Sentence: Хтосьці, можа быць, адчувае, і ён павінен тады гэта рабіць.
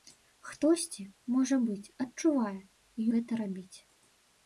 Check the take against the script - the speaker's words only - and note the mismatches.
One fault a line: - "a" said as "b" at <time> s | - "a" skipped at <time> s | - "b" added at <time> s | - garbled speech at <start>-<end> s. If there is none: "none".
- "ён павінен тады" skipped at 3.0 s